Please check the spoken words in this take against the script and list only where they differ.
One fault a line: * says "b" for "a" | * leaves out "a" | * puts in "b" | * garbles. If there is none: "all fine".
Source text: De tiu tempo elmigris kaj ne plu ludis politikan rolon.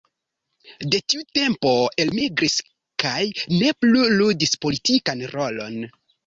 all fine